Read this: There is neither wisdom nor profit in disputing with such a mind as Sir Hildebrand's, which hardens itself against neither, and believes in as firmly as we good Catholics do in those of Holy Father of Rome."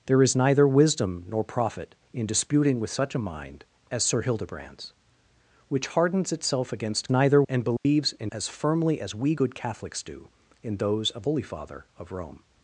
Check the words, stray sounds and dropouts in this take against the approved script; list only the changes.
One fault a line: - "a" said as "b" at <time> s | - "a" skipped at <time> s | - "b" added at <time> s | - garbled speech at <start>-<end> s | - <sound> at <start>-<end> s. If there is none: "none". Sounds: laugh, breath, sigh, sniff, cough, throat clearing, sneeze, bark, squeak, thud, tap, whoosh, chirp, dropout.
- dropout at 7.8-7.9 s